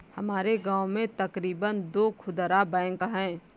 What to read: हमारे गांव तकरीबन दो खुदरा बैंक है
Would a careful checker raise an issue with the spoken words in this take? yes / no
yes